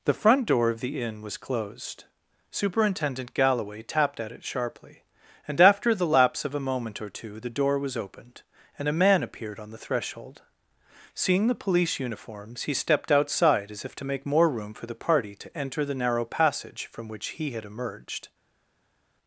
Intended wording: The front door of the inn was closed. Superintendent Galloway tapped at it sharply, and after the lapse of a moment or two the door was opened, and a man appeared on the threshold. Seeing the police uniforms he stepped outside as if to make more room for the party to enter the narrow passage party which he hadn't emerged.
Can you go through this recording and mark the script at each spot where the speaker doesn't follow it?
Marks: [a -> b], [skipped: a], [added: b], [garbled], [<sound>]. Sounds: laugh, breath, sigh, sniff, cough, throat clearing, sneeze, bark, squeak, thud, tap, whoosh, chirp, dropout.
The front door of the inn was closed. Superintendent Galloway tapped at it sharply, and after the lapse of a moment or two the door was opened, and a man appeared on the threshold. Seeing the police uniforms he stepped outside as if to make more room for the party to enter the narrow passage [party -> from] which he [hadn't -> had] emerged.